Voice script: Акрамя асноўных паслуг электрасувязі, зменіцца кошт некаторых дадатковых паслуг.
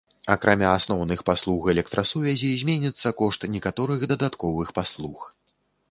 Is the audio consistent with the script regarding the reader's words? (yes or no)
yes